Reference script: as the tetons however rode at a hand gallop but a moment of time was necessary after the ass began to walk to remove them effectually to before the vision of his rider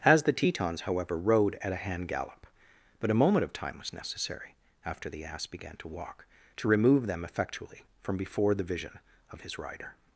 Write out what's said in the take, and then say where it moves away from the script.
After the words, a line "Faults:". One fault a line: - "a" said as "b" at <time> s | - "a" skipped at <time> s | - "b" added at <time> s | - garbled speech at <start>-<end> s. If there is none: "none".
as the tetons however rode at a hand gallop but a moment of time was necessary after the ass began to walk to remove them effectually from before the vision of his rider
Faults:
- "to" said as "from" at 8.0 s